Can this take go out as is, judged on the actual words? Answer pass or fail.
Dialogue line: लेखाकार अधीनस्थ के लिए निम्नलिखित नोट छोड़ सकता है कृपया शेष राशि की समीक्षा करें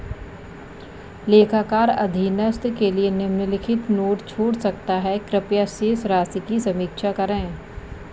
pass